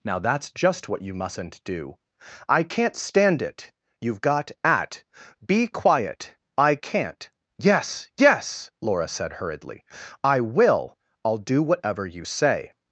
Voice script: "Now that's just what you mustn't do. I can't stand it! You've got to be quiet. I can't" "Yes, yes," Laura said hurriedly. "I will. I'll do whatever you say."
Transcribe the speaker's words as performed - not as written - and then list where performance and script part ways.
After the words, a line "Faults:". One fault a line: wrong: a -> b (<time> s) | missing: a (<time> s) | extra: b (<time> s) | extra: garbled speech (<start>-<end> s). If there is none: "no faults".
"Now that's just what you mustn't do. I can't stand it! You've got at be quiet. I can't" "Yes, yes," Laura said hurriedly. "I will. I'll do whatever you say."
Faults:
wrong: to -> at (4.6 s)